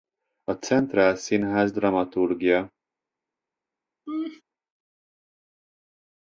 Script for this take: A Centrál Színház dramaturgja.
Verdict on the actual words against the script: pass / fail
pass